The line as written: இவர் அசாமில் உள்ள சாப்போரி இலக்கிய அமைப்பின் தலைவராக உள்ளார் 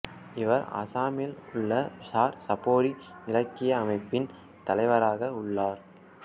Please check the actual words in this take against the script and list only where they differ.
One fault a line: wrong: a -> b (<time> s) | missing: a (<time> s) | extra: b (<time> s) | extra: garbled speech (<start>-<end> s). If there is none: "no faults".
extra: சார் (2.1 s)